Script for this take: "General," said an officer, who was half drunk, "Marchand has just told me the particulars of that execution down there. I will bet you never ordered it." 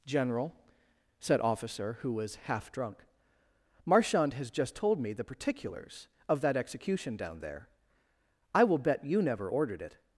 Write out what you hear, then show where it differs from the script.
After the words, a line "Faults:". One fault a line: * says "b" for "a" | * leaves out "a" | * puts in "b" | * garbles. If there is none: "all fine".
"General," said officer, who was half drunk, "Marchand has just told me the particulars of that execution down there. I will bet you never ordered it."
Faults:
* leaves out "an"